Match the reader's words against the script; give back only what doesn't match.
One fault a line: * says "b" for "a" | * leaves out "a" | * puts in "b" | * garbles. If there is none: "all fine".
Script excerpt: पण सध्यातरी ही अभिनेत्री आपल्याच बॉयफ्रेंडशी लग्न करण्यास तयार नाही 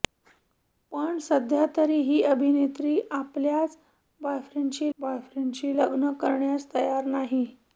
* puts in "बॉयफ्रेंडशी"